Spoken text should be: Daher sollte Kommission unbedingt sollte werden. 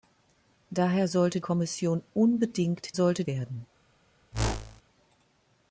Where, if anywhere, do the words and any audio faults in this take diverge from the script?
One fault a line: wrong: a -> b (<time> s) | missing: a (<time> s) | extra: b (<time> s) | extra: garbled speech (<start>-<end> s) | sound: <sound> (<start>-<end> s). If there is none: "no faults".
sound: whoosh (4.3-4.8 s)